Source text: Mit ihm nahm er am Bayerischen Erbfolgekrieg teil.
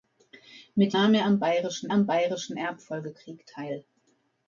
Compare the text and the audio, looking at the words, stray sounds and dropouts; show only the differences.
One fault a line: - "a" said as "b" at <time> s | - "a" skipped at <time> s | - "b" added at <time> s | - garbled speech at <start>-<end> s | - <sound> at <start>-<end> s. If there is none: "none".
- "ihm" skipped at 1.0 s
- "am Bayerischen" added at 1.9 s